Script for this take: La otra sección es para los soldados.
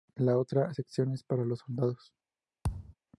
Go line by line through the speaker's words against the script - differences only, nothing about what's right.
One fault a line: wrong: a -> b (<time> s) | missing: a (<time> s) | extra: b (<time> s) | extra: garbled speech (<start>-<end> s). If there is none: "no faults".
no faults